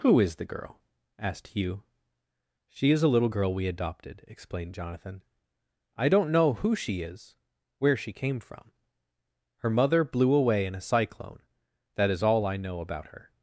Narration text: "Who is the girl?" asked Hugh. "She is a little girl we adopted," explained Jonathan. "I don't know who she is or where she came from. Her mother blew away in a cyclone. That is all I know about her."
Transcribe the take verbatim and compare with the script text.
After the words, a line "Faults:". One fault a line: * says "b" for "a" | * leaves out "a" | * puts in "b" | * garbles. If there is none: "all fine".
"Who is the girl?" asked Hugh. "She is a little girl we adopted," explained Jonathan. "I don't know who she is where she came from. Her mother blew away in a cyclone. That is all I know about her."
Faults:
* leaves out "or"